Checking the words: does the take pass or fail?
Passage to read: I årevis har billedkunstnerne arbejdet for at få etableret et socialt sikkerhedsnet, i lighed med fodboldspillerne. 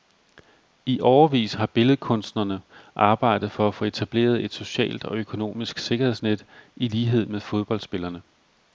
fail